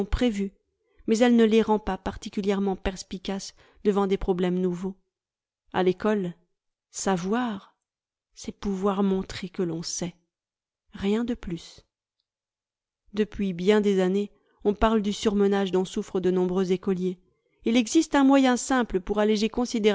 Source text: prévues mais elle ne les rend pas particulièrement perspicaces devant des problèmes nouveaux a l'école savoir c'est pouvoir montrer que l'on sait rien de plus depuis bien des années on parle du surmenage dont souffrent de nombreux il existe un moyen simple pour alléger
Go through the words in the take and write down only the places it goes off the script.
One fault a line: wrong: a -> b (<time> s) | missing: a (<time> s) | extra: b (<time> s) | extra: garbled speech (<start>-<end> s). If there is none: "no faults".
extra: écoliers (16.7 s)